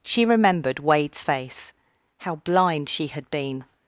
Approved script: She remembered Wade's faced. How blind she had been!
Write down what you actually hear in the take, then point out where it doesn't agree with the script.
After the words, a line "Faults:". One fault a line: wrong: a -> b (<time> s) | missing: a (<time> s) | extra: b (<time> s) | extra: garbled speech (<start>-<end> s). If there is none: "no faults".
She remembered Wade's face. How blind she had been!
Faults:
wrong: faced -> face (1.2 s)